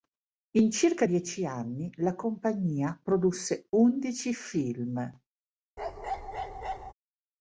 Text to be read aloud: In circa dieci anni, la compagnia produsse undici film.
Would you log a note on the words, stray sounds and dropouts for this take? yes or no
yes